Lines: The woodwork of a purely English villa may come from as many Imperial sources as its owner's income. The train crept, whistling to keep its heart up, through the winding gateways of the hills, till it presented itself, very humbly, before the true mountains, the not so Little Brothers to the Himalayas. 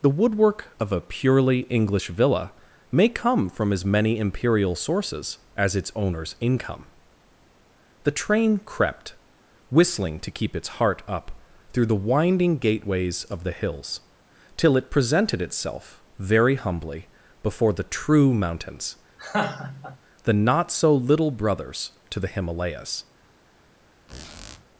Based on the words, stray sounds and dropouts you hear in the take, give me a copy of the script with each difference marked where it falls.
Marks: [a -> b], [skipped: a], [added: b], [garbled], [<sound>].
The woodwork of a purely English villa may come from as many Imperial sources as its owner's income. The train crept, whistling to keep its heart up, through the winding gateways of the hills, till it presented itself, very humbly, before the true mountains, [laugh] the not so Little Brothers to the Himalayas. [squeak]